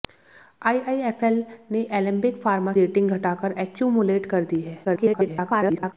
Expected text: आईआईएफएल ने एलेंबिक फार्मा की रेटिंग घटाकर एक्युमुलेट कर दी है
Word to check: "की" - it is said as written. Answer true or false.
false